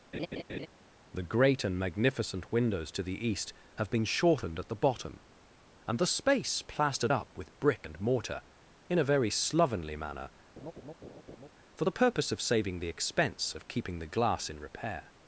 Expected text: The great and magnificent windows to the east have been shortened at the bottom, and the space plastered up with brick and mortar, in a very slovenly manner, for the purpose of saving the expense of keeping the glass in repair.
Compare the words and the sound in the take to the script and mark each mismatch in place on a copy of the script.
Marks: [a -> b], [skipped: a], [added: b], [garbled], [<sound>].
[laugh] The great and magnificent windows to the east have been shortened at the bottom, and the space plastered up with brick and mortar, in a very slovenly manner, [laugh] for the purpose of saving the expense of keeping the glass in repair.